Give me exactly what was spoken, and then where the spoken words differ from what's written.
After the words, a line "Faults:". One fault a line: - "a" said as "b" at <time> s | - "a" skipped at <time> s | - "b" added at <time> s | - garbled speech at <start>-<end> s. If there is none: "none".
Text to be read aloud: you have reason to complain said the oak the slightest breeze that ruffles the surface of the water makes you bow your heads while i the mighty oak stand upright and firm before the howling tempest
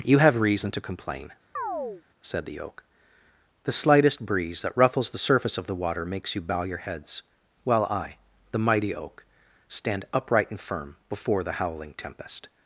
you have reason to complain said the oak the slightest breeze that ruffles the surface of the water makes you bow your heads while i the mighty oak stand upright and firm before the howling tempest
Faults:
none